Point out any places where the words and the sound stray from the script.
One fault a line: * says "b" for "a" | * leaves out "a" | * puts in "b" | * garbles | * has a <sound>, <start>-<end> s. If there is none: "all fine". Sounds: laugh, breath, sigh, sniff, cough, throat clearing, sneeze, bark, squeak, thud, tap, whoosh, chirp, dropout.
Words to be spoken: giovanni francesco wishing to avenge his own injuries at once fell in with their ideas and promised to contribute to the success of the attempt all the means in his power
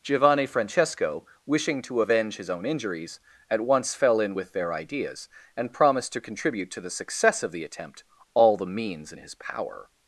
all fine